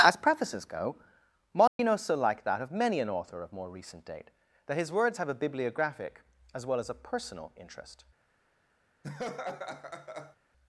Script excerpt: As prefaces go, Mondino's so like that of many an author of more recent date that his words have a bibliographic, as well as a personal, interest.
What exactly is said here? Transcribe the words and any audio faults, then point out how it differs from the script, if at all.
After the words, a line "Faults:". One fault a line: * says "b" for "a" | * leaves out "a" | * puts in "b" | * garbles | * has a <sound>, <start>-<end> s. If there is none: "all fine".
As prefaces go, Mondino's so like that of many an author of more recent date that his words have a bibliographic, as well as a personal, interest.
Faults:
* has a dropout, 1.7-1.8 s
* has a laugh, 9.0-10.4 s